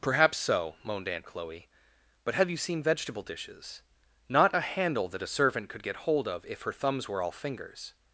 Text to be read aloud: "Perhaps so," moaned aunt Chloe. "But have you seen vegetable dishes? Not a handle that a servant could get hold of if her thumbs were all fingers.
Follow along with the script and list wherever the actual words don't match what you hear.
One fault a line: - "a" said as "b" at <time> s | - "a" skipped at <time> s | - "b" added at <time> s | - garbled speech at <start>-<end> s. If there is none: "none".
none